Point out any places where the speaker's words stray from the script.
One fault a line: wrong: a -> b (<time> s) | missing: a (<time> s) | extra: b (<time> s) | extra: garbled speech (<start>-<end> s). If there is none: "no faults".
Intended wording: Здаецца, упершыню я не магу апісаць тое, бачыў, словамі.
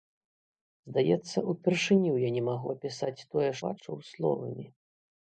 no faults